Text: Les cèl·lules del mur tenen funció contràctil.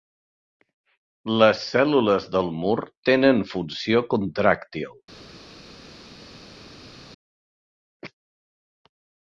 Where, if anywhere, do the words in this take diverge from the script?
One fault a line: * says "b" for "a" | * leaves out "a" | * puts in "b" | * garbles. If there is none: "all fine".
all fine